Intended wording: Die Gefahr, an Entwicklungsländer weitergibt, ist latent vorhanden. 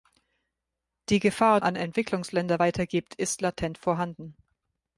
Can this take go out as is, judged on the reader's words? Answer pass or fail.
pass